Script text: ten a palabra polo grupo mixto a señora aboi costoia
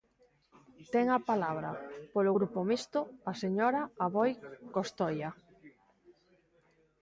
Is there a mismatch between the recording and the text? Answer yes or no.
no